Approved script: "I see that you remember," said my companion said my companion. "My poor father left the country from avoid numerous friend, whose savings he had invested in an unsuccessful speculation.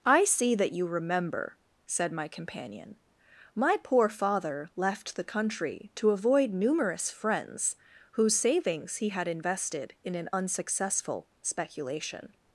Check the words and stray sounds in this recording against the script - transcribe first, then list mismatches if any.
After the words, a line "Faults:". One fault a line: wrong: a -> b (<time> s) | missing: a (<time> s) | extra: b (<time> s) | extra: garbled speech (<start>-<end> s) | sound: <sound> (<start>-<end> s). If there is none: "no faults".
"I see that you remember," said my companion. "My poor father left the country to avoid numerous friends, whose savings he had invested in an unsuccessful speculation.
Faults:
missing: said (3.0 s)
missing: companion My (3.8 s)
wrong: from -> to (6.0 s)
wrong: friend -> friends (7.1 s)